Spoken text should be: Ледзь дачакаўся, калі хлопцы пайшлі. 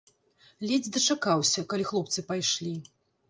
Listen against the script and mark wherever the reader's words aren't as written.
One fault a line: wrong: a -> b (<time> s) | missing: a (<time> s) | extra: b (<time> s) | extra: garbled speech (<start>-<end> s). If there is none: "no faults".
no faults